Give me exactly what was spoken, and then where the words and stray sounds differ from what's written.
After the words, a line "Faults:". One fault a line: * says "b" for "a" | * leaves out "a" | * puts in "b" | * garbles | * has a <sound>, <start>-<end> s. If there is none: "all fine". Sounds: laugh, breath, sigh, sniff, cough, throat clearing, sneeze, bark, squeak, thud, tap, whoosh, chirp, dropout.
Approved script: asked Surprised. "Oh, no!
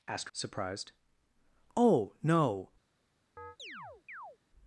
asked Surprised. "Oh, no!
Faults:
* has a chirp, 3.4-4.4 s